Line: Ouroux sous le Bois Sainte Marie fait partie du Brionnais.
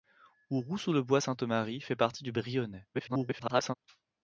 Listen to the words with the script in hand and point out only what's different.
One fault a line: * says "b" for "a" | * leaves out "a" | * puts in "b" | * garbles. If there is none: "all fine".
* garbles